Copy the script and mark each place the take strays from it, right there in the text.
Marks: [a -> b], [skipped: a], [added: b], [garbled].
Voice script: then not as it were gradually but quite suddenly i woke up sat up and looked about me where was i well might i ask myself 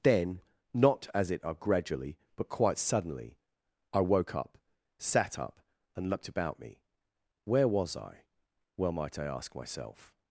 then not as it [were -> are] gradually but quite suddenly i woke up sat up and looked about me where was i well might i ask myself